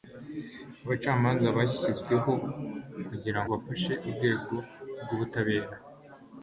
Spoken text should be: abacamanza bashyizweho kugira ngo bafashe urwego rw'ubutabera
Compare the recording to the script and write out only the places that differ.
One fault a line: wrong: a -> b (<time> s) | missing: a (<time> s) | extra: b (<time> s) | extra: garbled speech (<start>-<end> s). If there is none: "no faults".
missing: ngo (3.4 s)